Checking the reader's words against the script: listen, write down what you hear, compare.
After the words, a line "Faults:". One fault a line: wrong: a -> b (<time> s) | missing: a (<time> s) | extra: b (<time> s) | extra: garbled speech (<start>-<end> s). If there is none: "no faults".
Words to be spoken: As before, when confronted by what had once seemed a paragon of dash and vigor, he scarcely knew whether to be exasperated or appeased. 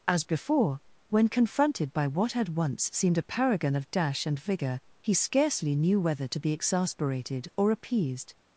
As before, when confronted by what had once seemed a paragon of dash and vigor, he scarcely knew whether to be exasperated or appeased.
Faults:
no faults